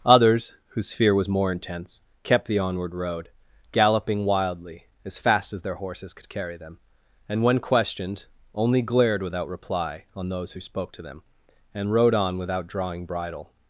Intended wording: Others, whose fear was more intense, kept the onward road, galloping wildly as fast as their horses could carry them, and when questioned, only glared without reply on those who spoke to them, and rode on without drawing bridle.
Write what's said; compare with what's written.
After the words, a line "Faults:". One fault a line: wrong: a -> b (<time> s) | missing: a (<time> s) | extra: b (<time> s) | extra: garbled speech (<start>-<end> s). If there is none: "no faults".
Others, whose fear was more intense, kept the onward road, galloping wildly as fast as their horses could carry them, and when questioned, only glared without reply on those who spoke to them, and rode on without drawing bridle.
Faults:
no faults